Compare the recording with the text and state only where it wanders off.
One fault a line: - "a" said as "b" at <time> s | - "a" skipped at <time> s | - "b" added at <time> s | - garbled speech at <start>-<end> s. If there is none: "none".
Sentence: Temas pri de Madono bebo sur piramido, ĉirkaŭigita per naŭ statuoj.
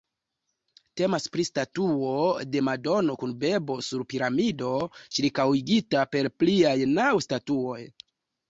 - "statuo" added at 1.5 s
- "kun" added at 3.2 s
- "pliaj" added at 6.4 s